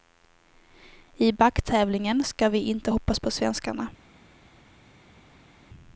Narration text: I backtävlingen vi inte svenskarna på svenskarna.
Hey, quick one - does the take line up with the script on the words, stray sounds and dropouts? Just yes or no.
no